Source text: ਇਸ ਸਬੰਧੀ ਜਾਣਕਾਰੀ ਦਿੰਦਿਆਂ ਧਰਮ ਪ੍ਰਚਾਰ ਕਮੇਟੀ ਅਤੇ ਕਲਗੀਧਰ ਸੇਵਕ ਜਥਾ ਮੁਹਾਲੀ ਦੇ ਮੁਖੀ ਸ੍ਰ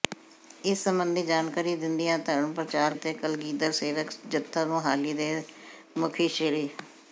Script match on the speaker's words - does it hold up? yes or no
no